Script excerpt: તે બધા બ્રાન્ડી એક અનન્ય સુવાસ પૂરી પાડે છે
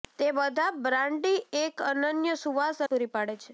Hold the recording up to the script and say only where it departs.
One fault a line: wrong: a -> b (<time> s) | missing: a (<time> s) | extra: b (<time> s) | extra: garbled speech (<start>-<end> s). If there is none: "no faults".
no faults